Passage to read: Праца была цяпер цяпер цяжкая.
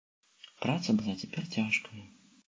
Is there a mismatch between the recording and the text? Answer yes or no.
yes